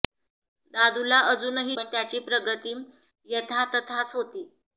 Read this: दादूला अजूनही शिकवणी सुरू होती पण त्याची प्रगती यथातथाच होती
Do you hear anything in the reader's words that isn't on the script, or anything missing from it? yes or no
yes